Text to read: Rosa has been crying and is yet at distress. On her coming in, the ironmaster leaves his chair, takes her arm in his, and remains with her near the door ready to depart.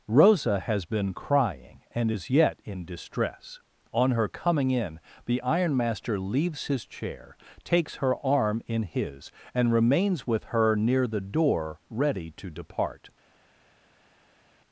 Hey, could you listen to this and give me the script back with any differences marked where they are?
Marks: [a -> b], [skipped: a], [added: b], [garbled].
Rosa has been crying and is yet [at -> in] distress. On her coming in, the ironmaster leaves his chair, takes her arm in his, and remains with her near the door ready to depart.